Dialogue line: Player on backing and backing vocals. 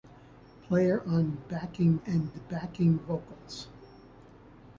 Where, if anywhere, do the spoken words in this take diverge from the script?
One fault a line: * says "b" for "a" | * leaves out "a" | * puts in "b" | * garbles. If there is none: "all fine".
all fine